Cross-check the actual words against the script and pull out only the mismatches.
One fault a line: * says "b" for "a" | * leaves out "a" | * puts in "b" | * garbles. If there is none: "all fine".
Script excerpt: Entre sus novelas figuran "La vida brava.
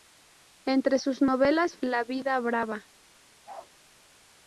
* leaves out "figuran"